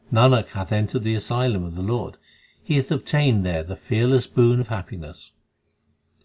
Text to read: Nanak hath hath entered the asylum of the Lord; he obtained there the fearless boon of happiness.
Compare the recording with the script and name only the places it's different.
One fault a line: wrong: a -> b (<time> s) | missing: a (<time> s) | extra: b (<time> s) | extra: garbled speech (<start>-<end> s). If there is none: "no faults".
missing: hath (0.7 s)
extra: hath (2.8 s)